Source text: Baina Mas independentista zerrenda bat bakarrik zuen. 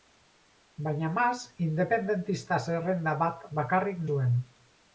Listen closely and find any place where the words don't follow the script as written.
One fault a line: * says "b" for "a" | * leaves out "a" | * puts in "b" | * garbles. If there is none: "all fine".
all fine